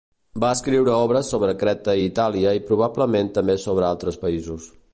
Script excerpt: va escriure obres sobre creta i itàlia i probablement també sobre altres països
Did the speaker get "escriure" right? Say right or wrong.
right